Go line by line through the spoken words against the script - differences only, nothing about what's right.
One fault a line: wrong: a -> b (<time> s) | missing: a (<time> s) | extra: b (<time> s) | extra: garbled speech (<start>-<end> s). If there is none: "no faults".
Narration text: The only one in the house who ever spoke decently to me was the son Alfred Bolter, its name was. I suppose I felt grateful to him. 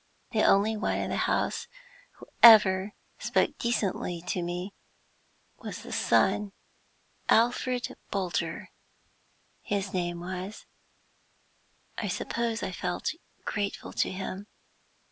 wrong: its -> his (9.6 s)